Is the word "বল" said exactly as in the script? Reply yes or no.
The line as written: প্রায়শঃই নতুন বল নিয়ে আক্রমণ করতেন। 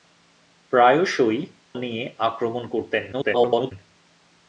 no